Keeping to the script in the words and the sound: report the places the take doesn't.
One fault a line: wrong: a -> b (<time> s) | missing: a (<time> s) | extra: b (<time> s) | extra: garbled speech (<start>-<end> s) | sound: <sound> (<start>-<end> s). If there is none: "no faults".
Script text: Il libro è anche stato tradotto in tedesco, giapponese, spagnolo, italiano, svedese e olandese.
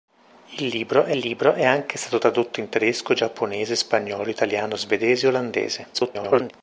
extra: libro è (1.2 s)
extra: garbled speech (5.9-6.5 s)